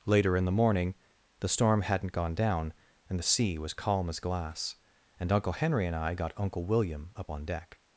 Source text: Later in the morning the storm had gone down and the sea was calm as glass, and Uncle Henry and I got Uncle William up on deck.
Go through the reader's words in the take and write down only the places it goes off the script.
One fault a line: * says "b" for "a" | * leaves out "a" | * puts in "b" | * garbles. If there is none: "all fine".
* says "hadn't" for "had"